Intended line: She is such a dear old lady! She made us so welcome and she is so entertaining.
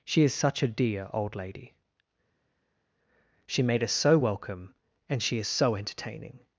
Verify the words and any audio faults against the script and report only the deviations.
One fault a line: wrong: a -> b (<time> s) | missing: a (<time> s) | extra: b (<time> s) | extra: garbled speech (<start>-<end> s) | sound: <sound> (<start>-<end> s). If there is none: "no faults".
no faults